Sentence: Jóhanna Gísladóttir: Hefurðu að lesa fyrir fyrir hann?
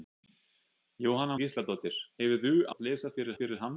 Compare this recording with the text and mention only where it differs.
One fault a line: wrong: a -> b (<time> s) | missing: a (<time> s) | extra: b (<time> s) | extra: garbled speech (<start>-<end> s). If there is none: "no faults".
no faults